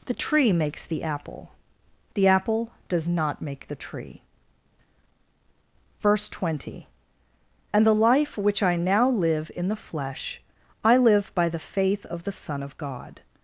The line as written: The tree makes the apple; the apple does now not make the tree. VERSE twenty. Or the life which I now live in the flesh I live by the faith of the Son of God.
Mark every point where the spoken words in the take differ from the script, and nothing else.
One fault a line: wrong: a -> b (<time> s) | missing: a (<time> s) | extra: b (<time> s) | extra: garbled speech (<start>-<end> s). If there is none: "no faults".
missing: now (3.1 s)
wrong: Or -> And (7.7 s)